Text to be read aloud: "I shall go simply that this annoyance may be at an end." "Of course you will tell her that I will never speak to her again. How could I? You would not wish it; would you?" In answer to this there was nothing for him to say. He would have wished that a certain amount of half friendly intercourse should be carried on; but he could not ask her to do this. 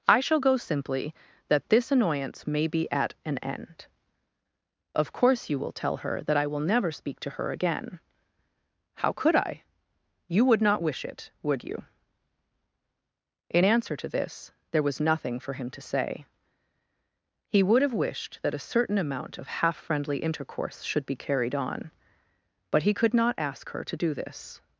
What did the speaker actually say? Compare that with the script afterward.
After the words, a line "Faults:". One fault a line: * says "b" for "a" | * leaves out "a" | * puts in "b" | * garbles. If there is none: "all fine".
"I shall go simply that this annoyance may be at an end." "Of course you will tell her that I will never speak to her again. How could I? You would not wish it; would you?" In answer to this there was nothing for him to say. He would have wished that a certain amount of half friendly intercourse should be carried on; but he could not ask her to do this.
Faults:
all fine